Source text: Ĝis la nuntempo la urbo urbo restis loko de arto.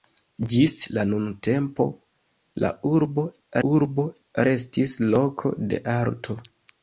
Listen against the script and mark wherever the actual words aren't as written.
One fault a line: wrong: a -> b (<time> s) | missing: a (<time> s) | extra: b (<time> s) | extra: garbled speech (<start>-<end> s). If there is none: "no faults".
no faults